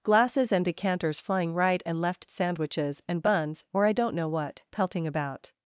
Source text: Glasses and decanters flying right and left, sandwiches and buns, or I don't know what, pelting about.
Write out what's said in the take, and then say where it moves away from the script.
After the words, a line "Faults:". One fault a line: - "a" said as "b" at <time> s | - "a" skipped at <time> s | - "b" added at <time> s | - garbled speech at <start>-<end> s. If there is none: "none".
Glasses and decanters flying right and left, sandwiches and buns, or I don't know what, pelting about.
Faults:
none